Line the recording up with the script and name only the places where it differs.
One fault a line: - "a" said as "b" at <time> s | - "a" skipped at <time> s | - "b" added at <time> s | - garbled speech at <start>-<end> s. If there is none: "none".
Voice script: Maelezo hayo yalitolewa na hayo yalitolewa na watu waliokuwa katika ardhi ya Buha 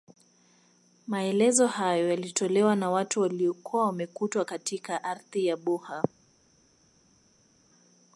- "hayo yalitolewa na" skipped at 2.9 s
- "wamekutwa" added at 3.9 s